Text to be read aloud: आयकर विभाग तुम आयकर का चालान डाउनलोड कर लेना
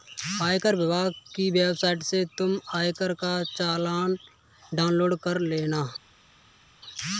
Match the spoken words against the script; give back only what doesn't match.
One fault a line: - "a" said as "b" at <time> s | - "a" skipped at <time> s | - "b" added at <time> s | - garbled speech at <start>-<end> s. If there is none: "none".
- "की वेबसाइट से" added at 1.4 s